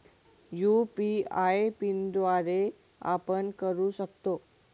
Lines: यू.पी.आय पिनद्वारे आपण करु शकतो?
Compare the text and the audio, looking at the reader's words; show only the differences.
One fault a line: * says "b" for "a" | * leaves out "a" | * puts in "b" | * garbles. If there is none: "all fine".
all fine